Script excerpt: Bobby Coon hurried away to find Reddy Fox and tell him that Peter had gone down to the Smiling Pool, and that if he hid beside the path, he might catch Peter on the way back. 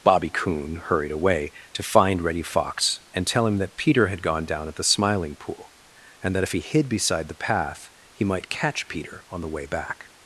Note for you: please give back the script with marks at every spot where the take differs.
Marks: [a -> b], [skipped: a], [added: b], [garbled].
Bobby Coon hurried away to find Reddy Fox and tell him that Peter had gone down [to -> at] the Smiling Pool, and that if he hid beside the path, he might catch Peter on the way back.